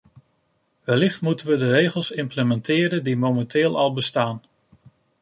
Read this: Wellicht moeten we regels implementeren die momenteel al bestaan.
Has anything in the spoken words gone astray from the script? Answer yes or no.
yes